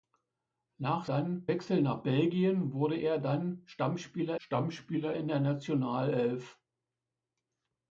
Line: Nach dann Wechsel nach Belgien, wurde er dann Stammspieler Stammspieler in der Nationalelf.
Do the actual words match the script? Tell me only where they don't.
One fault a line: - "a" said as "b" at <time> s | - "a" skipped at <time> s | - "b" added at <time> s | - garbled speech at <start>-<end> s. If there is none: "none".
none